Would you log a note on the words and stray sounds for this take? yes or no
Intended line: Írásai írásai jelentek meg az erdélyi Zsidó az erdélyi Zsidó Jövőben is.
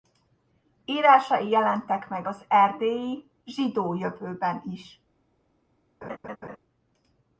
yes